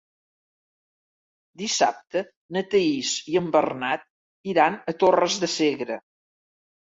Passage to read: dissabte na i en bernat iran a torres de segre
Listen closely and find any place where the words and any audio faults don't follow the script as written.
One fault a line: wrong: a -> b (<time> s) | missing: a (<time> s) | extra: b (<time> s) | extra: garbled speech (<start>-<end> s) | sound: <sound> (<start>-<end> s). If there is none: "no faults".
extra: thaís (2.7 s)